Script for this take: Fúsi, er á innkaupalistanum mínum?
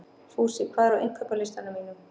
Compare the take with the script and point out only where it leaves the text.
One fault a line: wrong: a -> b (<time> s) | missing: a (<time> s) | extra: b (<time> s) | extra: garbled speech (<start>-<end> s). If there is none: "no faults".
extra: hvað (0.7 s)